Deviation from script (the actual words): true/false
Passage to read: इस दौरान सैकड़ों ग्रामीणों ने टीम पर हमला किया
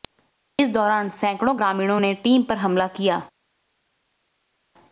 false